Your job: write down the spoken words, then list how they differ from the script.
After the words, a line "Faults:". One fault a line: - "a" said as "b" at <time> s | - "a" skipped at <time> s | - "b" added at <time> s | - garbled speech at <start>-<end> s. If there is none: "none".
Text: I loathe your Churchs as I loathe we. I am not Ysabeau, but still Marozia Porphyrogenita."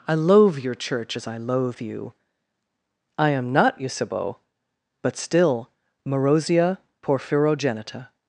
I loathe your Church as I loathe you. I am not Ysabeau, but still Marozia Porphyrogenita."
Faults:
- "Churchs" said as "Church" at 0.8 s
- "we" said as "you" at 1.8 s